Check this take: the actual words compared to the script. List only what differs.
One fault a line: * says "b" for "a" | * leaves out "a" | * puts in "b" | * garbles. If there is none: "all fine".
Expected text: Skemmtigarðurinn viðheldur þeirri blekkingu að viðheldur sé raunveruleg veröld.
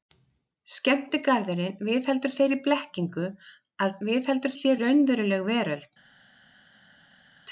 all fine